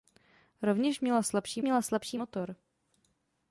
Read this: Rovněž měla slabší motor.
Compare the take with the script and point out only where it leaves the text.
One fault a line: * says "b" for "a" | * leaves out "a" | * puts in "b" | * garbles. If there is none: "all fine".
* puts in "měla slabší"